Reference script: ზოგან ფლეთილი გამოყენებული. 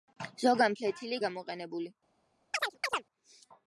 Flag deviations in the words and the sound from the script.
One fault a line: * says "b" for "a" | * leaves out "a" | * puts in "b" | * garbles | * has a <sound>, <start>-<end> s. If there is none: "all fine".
* has a chirp, 2.5-3.0 s